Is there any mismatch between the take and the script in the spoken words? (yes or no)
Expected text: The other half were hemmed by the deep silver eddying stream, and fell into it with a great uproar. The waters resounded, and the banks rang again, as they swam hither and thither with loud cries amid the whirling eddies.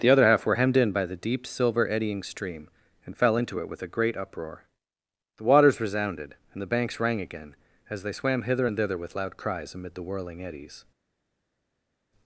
yes